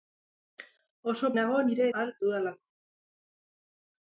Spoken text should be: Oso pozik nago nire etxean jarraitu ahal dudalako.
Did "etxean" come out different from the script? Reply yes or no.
yes